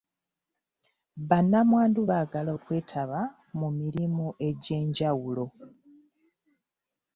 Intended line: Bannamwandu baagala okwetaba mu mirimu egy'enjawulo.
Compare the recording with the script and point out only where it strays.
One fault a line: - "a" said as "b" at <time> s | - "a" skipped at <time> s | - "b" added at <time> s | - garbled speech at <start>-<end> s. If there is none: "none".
none